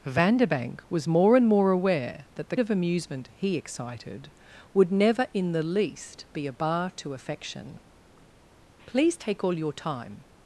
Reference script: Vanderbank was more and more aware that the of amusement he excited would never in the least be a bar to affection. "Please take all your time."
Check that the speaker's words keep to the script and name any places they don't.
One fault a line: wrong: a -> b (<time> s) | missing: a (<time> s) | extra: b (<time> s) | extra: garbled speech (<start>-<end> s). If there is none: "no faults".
no faults